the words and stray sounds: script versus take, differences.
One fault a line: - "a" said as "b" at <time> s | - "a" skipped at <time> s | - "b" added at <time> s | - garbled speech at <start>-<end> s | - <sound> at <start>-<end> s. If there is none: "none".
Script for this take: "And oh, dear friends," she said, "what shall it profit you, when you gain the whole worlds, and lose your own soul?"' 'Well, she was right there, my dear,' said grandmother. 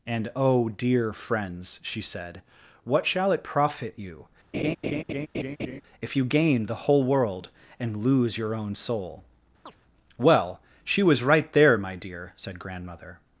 - laugh at 4.5-5.8 s
- "when" said as "if" at 6.0 s
- "worlds" said as "world" at 7.0 s
- chirp at 9.7-9.8 s